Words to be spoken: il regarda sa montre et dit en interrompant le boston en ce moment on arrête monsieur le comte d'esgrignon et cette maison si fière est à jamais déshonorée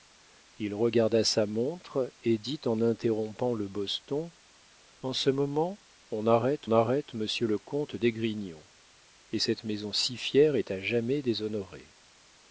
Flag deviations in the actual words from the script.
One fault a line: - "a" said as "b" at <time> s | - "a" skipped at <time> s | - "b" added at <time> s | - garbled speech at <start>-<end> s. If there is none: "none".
- "arrête" added at 6.7 s